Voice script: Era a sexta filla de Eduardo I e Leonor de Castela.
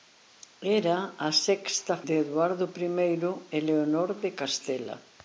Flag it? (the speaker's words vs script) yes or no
yes